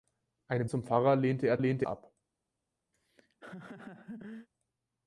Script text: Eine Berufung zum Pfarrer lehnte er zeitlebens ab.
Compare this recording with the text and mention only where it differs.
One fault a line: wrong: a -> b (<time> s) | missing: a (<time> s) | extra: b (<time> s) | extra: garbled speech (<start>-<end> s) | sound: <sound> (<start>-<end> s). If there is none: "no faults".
missing: Berufung (0.7 s)
wrong: zeitlebens -> lehnte (1.6 s)
sound: laugh (2.9-4.5 s)